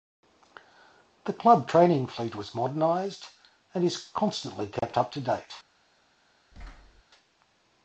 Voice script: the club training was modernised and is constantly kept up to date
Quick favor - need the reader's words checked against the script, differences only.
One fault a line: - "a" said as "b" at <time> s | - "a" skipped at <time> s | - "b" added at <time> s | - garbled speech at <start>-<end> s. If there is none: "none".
- "fleet" added at 2.1 s